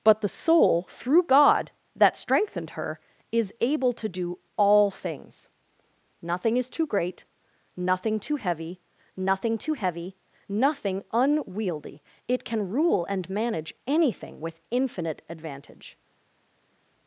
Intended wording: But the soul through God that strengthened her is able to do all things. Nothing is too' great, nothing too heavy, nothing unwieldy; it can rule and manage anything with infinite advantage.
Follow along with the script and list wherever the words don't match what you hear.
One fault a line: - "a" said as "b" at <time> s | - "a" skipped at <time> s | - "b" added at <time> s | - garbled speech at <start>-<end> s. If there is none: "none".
- "too heavy nothing" added at 9.6 s